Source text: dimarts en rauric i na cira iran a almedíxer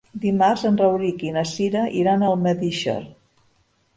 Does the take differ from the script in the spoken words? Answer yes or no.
no